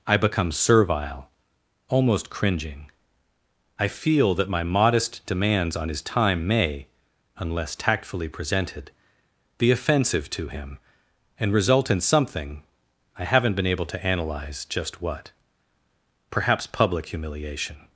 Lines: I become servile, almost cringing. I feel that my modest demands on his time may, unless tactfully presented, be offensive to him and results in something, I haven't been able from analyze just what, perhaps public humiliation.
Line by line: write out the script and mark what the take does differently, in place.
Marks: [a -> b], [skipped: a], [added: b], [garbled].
I become servile, almost cringing. I feel that my modest demands on his time may, unless tactfully presented, be offensive to him and [results -> result] in something, I haven't been able [from -> to] analyze just what, perhaps public humiliation.